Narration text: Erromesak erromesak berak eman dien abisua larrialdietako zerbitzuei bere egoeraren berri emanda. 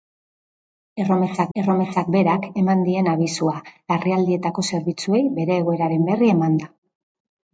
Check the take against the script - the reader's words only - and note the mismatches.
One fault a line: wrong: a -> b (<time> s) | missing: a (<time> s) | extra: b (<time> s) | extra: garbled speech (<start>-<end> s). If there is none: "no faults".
no faults